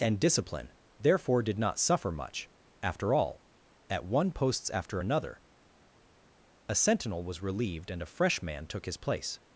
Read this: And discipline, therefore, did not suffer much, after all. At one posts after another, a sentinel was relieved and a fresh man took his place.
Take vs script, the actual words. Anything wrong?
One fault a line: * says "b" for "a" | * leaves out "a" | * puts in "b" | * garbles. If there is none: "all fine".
all fine